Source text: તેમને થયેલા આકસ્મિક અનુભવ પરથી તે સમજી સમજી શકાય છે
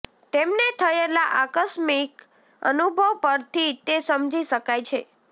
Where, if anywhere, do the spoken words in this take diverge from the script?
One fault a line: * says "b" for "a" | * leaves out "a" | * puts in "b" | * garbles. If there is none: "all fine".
* leaves out "સમજી"